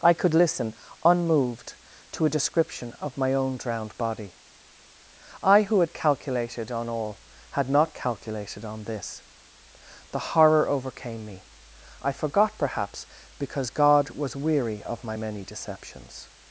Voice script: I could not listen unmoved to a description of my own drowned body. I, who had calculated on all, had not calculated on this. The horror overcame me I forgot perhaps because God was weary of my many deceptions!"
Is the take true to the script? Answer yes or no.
no